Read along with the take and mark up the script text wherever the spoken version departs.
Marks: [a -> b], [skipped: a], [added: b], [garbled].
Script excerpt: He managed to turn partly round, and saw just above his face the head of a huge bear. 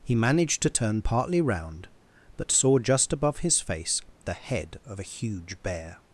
He managed to turn partly round, [and -> but] saw just above his face the head of a huge bear.